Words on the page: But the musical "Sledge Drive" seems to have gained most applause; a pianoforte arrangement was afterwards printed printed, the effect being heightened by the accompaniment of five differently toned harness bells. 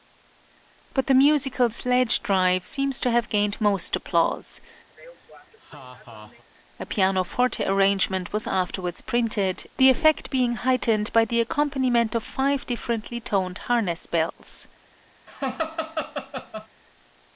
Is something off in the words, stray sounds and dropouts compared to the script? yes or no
yes